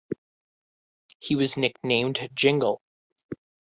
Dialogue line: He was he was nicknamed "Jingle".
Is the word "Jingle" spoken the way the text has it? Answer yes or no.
yes